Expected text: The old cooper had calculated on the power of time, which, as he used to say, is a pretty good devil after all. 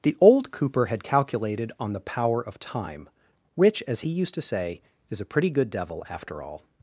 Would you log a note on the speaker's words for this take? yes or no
no